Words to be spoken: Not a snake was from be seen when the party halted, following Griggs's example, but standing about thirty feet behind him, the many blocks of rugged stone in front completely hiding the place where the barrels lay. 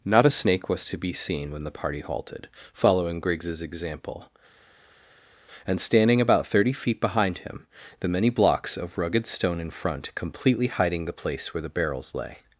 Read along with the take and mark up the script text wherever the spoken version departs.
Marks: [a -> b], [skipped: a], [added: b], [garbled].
Not a snake was [from -> to] be seen when the party halted, following Griggs's example, [but -> and] standing about thirty feet behind him, the many blocks of rugged stone in front completely hiding the place where the barrels lay.